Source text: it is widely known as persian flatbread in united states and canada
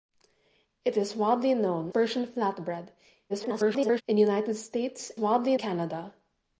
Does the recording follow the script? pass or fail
fail